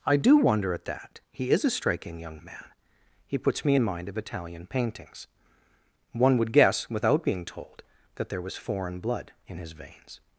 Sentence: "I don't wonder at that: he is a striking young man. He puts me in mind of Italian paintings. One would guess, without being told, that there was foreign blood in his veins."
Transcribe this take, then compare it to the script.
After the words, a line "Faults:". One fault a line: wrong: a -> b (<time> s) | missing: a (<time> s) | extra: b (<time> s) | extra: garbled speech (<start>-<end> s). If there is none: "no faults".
"I do wonder at that: he is a striking young man. He puts me in mind of Italian paintings. One would guess, without being told, that there was foreign blood in his veins."
Faults:
wrong: don't -> do (0.2 s)